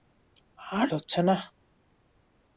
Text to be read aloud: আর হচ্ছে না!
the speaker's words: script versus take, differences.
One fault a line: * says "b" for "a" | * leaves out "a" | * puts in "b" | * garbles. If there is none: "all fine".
all fine